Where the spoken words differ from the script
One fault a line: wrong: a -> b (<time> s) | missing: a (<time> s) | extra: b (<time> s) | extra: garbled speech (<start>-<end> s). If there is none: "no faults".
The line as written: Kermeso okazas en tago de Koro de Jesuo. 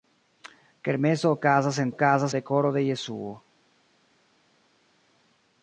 wrong: tago -> okazas (1.9 s)